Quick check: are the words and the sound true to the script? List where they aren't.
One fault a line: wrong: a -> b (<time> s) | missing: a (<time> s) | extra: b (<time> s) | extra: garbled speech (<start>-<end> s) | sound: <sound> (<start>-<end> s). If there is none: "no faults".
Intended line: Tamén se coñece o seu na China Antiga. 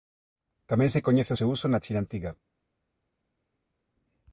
extra: uso (1.5 s)